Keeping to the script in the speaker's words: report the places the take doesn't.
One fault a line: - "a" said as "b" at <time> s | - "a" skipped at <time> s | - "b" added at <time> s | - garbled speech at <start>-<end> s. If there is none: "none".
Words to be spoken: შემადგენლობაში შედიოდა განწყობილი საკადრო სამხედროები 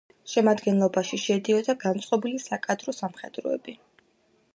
none